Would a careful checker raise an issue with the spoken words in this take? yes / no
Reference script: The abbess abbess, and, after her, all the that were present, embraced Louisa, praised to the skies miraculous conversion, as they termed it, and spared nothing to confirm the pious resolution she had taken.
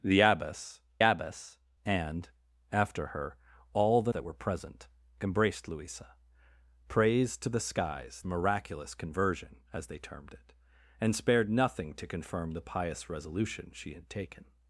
no